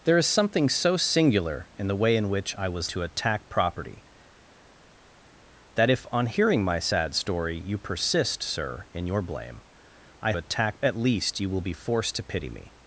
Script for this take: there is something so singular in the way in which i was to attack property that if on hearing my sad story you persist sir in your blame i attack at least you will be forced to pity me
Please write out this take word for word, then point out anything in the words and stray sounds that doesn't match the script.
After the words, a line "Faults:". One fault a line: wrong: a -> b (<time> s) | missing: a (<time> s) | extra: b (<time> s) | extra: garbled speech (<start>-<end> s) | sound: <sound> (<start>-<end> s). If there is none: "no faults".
there is something so singular in the way in which i was to attack property that if on hearing my sad story you persist sir in your blame i attack at least you will be forced to pity me
Faults:
no faults